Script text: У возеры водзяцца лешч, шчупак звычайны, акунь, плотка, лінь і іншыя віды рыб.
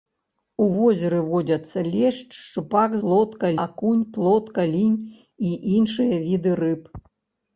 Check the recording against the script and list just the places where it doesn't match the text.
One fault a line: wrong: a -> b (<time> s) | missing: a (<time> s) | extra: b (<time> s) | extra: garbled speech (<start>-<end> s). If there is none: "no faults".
wrong: звычайны -> плотка (3.0 s)